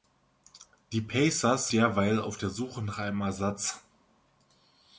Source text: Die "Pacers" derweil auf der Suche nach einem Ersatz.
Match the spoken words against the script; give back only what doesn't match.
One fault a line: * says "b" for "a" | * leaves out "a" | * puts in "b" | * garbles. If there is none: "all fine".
all fine